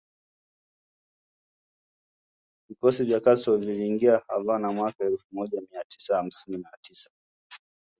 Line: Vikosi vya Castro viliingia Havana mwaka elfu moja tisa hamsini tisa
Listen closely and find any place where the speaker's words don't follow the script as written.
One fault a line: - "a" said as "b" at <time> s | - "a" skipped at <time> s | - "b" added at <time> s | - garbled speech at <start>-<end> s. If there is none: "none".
- "mia" added at 5.7 s
- "na" added at 6.6 s